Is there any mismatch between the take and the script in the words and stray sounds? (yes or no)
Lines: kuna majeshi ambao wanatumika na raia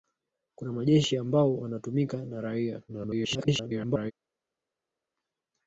yes